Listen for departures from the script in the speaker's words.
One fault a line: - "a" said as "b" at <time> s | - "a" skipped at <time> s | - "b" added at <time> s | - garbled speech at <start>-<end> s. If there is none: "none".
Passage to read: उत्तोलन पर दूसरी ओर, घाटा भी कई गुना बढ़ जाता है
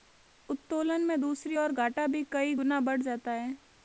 - "पर" said as "में" at 1.1 s